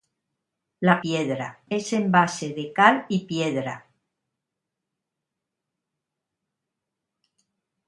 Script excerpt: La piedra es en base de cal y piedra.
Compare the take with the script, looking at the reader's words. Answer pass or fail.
pass